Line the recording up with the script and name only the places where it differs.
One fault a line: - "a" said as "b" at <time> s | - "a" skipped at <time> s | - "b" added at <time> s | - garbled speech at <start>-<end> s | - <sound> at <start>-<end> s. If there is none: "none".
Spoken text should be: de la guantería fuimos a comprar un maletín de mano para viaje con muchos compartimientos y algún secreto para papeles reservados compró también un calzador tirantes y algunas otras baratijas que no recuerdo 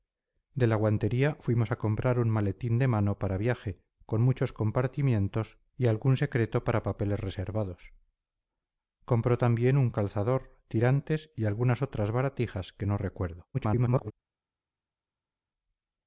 - garbled speech at 13.5-14.1 s